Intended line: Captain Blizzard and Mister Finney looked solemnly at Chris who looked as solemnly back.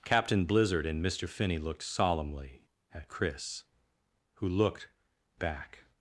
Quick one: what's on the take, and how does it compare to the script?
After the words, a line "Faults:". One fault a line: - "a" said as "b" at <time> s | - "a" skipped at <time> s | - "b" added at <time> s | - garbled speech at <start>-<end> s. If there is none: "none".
Captain Blizzard and Mister Finney looked solemnly at Chris who looked back.
Faults:
- "as solemnly" skipped at 4.9 s